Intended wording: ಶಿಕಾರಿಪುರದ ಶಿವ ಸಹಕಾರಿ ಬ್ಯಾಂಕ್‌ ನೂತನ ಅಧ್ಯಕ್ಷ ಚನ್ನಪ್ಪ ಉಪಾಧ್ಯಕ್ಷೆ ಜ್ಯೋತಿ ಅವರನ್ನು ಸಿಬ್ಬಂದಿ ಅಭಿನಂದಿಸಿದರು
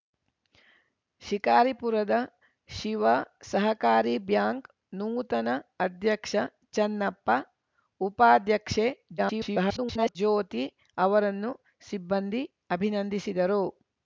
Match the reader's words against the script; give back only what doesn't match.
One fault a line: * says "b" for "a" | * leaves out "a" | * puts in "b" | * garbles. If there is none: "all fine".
* garbles